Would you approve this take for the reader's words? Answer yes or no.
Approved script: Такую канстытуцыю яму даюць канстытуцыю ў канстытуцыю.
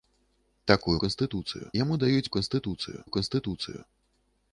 yes